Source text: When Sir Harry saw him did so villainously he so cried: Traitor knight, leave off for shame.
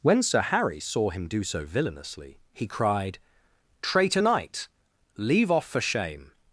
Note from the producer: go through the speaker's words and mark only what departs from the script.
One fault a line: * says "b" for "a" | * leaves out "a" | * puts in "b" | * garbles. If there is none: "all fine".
* says "do" for "did"
* leaves out "so"